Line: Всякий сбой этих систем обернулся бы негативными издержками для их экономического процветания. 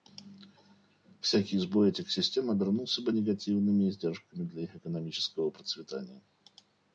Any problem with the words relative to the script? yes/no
no